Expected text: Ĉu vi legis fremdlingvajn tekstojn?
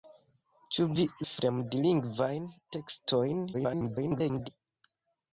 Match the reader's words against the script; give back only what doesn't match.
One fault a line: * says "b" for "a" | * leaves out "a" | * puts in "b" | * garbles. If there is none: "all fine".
* leaves out "legis"
* garbles